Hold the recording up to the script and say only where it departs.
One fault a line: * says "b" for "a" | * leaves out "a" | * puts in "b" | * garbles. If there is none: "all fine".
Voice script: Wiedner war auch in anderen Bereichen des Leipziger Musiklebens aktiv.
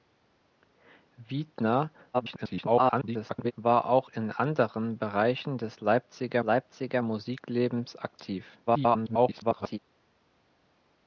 * garbles
* puts in "Leipziger"
* garbles